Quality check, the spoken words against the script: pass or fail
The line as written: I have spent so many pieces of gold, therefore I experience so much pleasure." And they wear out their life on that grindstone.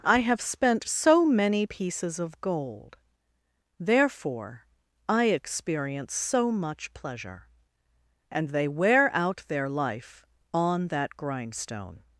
pass